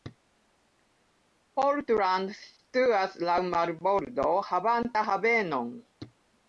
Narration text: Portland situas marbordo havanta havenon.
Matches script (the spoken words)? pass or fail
fail